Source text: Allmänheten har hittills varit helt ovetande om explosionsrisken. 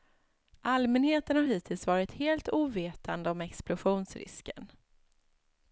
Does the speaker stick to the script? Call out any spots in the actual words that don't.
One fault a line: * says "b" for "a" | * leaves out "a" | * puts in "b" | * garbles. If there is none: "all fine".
all fine